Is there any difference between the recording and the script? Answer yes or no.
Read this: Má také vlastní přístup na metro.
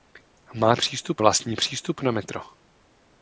yes